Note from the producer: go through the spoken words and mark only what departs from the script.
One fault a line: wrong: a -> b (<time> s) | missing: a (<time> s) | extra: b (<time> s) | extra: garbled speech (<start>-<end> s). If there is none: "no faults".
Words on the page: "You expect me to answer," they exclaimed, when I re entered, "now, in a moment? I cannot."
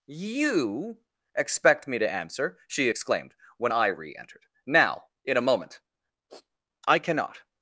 wrong: they -> she (2.7 s)